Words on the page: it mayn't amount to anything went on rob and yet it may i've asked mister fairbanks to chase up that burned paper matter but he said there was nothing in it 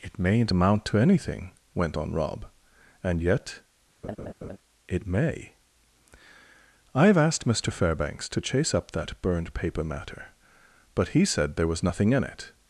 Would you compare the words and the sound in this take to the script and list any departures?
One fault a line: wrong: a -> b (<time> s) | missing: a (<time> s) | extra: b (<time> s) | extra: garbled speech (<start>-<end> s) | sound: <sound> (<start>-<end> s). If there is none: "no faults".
sound: laugh (4.0-4.6 s)